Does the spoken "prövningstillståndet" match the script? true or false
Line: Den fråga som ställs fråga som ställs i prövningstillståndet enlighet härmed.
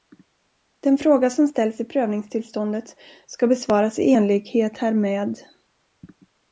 false